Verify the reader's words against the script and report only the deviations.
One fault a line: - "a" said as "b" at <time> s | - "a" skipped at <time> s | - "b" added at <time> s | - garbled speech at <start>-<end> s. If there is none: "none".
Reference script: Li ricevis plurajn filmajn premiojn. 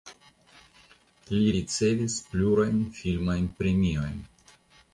none